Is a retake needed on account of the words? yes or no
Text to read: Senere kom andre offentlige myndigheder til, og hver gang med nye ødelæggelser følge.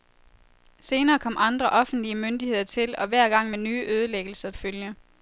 no